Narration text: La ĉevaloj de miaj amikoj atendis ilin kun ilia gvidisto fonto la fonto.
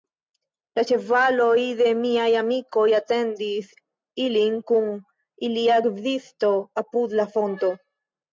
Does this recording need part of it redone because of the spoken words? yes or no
yes